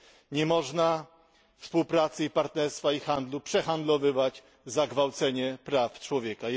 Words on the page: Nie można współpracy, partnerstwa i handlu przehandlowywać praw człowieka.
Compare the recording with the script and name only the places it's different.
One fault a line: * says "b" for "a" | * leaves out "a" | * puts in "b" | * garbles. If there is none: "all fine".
* puts in "za gwałcenie"